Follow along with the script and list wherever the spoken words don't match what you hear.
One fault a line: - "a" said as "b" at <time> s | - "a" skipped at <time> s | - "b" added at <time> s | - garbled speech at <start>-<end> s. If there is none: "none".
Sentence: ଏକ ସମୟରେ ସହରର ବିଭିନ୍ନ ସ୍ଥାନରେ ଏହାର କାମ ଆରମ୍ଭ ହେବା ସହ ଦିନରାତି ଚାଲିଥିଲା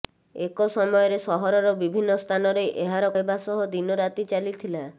- "କାମ ଆରମ୍ଭ" skipped at 3.1 s